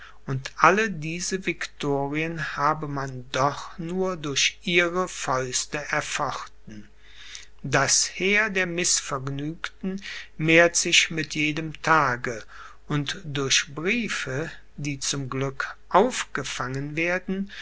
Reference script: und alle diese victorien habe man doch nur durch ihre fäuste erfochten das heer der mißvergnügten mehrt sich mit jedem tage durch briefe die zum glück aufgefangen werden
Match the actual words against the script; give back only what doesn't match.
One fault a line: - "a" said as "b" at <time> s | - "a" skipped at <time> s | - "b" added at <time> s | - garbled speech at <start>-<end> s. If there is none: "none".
- "und" added at 12.9 s